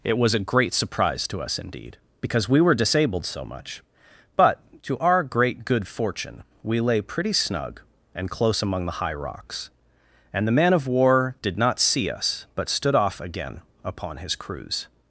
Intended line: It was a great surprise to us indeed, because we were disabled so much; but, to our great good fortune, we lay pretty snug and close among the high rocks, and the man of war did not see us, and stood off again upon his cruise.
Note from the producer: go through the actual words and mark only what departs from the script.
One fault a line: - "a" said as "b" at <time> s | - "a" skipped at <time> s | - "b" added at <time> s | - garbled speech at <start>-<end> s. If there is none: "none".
- "and" said as "but" at 12.6 s